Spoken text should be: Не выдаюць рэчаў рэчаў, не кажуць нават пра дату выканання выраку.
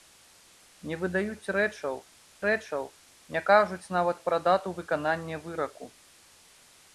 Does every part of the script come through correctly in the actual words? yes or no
yes